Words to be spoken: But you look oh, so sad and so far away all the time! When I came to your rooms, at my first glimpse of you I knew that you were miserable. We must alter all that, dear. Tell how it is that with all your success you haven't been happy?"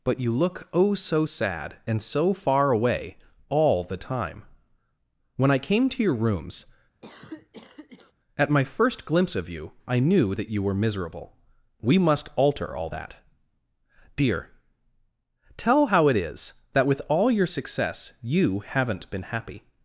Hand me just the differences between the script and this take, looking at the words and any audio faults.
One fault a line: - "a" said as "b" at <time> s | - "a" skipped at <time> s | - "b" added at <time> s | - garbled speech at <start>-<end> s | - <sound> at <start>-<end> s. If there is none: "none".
- cough at 7.0-8.1 s